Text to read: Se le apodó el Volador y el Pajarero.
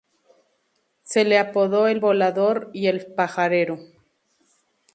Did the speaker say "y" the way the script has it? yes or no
yes